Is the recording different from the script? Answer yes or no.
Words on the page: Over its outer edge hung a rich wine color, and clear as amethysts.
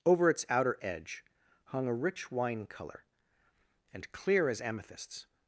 no